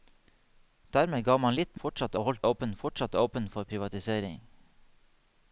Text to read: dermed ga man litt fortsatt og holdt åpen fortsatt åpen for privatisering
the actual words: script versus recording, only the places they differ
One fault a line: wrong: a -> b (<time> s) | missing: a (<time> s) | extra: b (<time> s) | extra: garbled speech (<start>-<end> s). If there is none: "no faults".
no faults